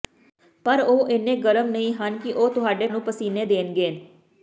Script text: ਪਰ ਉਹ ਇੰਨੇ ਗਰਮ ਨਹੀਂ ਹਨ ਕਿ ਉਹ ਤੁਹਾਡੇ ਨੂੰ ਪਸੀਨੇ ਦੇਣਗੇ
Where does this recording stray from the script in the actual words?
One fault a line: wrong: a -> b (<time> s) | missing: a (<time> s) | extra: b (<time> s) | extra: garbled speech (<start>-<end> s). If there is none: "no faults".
no faults